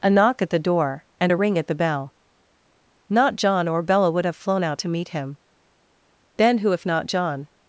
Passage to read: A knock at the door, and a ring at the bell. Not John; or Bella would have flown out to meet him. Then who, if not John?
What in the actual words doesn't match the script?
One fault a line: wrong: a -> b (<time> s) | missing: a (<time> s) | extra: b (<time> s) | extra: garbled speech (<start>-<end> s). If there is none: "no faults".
no faults